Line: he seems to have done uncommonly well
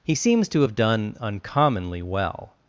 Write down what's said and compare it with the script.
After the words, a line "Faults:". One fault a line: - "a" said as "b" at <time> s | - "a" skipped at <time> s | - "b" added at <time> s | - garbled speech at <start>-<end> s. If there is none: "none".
he seems to have done uncommonly well
Faults:
none